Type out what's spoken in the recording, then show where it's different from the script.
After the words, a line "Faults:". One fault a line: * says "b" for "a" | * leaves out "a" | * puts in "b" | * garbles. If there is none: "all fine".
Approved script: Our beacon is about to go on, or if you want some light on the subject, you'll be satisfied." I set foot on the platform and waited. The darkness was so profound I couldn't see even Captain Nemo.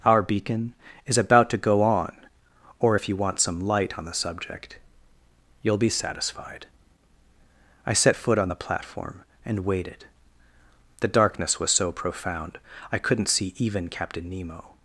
Our beacon is about to go on, or if you want some light on the subject, you'll be satisfied." I set foot on the platform and waited. The darkness was so profound I couldn't see even Captain Nemo.
Faults:
all fine